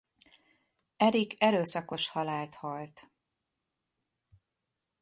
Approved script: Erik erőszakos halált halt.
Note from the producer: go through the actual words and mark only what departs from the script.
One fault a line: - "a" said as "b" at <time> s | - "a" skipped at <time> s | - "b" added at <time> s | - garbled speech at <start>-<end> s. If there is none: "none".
none